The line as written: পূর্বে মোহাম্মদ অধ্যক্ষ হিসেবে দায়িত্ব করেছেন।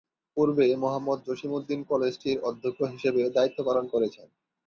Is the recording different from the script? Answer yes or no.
yes